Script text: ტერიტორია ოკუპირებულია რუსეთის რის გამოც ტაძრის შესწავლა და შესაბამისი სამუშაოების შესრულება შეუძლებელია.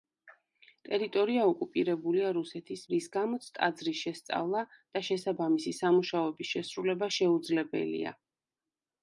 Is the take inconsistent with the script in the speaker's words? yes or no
no